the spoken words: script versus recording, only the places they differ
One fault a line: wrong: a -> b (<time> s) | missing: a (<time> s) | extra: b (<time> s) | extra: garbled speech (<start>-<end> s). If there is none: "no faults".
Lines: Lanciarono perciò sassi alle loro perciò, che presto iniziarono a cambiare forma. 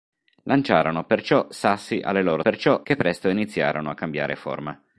no faults